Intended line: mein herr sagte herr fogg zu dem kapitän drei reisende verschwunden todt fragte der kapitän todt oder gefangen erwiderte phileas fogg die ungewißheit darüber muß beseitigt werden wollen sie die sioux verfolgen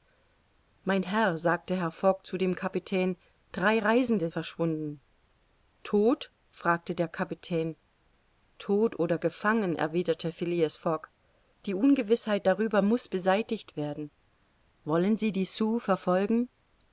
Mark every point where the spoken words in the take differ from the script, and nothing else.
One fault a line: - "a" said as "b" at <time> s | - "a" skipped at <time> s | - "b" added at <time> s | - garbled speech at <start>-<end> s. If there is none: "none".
none